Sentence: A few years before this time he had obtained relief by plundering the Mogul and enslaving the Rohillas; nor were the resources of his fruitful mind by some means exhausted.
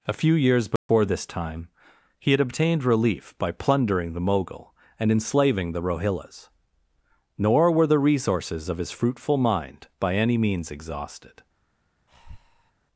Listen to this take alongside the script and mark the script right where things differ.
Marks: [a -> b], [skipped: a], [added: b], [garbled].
A few years before this time he had obtained relief by plundering the Mogul and enslaving the Rohillas; nor were the resources of his fruitful mind by [some -> any] means exhausted.